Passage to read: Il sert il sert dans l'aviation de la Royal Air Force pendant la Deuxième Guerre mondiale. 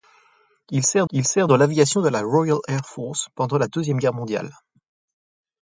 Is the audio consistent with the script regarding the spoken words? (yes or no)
yes